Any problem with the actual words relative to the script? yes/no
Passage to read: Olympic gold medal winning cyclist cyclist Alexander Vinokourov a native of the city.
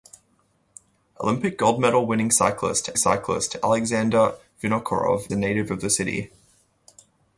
no